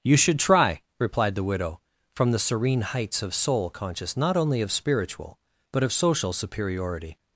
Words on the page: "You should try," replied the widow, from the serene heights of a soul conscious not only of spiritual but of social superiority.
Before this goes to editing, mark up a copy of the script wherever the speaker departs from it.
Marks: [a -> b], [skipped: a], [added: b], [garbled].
"You should try," replied the widow, from the serene heights of [skipped: a] soul conscious not only of spiritual but of social superiority.